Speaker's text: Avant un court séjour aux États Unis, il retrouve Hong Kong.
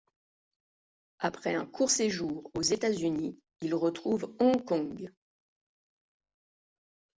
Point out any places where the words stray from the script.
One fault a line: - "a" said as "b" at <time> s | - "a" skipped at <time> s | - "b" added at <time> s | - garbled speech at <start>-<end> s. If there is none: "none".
- "Avant" said as "Après" at 1.2 s